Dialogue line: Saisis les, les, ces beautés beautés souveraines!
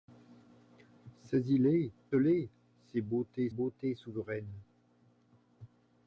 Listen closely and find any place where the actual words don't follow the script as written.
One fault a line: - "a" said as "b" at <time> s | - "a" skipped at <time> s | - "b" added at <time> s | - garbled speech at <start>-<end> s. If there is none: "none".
none